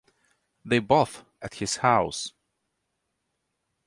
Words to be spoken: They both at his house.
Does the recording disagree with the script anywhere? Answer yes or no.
no